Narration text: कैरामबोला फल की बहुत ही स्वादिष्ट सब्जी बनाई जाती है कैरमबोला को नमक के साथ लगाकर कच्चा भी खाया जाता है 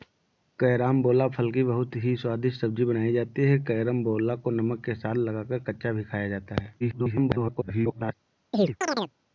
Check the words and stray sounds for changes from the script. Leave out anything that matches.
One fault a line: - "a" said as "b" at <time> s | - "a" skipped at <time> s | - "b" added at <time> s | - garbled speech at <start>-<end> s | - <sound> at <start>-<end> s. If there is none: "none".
- garbled speech at 6.8-8.1 s
- chirp at 8.5-9.1 s